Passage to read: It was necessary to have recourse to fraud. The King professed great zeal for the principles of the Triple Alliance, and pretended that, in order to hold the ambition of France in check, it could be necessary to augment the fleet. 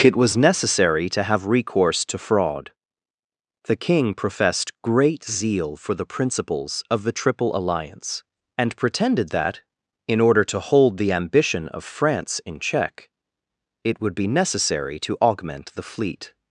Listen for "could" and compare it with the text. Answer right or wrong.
wrong